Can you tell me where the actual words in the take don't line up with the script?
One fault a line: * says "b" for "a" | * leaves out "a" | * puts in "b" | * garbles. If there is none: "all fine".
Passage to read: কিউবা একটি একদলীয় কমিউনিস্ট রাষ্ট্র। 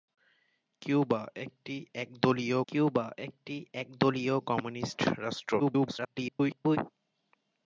* puts in "কিউবা একটি একদলীয়"
* garbles